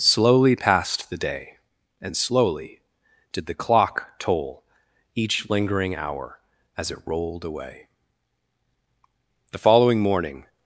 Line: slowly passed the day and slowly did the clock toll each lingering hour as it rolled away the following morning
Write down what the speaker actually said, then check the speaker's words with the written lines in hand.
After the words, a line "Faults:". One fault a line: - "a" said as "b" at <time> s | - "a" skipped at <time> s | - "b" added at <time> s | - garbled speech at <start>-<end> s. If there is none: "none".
slowly passed the day and slowly did the clock toll each lingering hour as it rolled away the following morning
Faults:
none